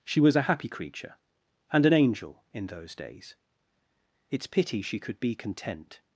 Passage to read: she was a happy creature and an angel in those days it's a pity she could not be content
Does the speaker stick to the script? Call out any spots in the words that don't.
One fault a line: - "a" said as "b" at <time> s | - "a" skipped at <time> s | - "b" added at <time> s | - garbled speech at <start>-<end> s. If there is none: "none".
- "a" skipped at 4.5 s
- "not" skipped at 5.2 s